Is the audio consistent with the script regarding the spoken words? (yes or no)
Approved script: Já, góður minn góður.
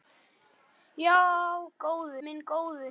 yes